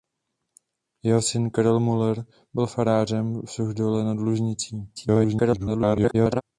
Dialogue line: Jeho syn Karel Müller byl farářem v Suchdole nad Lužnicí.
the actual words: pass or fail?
fail